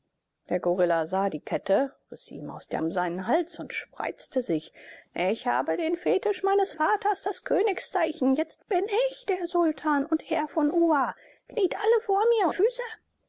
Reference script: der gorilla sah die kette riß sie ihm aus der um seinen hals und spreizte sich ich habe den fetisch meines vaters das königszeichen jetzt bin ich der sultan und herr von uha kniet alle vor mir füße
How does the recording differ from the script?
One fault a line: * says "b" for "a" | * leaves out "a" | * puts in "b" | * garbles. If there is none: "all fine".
all fine